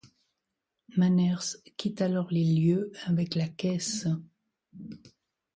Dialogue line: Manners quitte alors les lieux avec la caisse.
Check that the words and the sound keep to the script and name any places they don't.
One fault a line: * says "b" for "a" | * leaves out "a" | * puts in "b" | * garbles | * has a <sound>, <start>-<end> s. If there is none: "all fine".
all fine